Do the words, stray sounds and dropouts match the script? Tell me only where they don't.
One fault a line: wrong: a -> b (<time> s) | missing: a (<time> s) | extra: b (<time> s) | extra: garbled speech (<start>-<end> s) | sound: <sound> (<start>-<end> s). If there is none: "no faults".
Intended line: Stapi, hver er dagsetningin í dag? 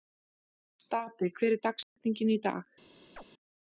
sound: dropout (1.8-2.0 s)
sound: chirp (3.2-3.2 s)